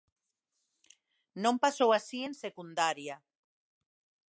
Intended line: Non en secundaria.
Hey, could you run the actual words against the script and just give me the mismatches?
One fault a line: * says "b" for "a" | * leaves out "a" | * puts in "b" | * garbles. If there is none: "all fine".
* puts in "pasou así"